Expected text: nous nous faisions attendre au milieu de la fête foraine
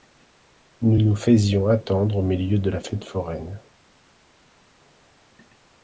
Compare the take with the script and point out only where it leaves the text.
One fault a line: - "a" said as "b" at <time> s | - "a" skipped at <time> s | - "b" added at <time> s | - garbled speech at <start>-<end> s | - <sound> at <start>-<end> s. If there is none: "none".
none